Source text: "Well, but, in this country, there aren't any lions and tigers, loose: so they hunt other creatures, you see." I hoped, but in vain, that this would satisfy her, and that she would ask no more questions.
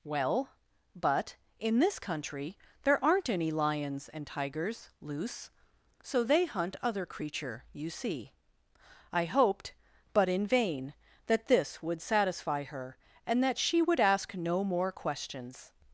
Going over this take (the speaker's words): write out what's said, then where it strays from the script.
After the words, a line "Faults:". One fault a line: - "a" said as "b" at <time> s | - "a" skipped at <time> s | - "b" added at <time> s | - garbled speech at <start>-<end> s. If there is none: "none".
"Well, but, in this country, there aren't any lions and tigers, loose: so they hunt other creature, you see." I hoped, but in vain, that this would satisfy her, and that she would ask no more questions.
Faults:
- "creatures" said as "creature" at 7.0 s